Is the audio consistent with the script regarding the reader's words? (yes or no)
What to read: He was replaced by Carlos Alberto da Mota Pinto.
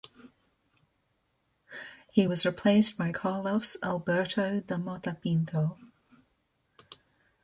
yes